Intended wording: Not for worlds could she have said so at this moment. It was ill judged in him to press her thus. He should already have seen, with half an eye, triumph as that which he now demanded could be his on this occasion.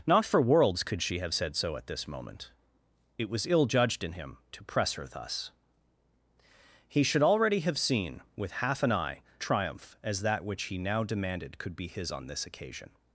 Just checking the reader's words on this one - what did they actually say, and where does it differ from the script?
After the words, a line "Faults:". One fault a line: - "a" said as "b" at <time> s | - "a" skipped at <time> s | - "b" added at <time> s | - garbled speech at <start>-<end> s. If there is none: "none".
Not for worlds could she have said so at this moment. It was ill judged in him to press her thus. He should already have seen, with half an eye, triumph as that which he now demanded could be his on this occasion.
Faults:
none